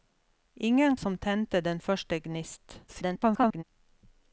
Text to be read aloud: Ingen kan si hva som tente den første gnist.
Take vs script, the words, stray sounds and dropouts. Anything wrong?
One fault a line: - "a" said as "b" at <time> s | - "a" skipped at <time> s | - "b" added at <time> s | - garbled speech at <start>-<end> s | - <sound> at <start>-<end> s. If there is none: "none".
- "kan si hva" skipped at 1.0 s
- garbled speech at 2.9-3.6 s